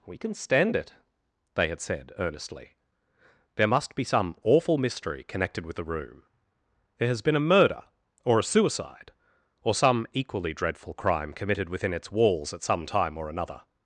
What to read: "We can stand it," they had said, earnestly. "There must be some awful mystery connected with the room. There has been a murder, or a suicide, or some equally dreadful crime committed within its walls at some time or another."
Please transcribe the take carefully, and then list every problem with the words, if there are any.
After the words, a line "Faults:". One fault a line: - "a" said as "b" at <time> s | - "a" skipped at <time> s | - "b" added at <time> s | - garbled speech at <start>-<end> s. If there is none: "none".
"We can stand it," they had said, earnestly. "There must be some awful mystery connected with the room. There has been a murder, or a suicide, or some equally dreadful crime committed within its walls at some time or another."
Faults:
none